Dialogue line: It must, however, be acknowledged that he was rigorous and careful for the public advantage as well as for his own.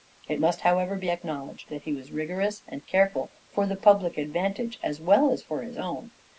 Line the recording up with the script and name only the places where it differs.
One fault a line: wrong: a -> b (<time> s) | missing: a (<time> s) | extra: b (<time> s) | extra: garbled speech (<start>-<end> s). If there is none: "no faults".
no faults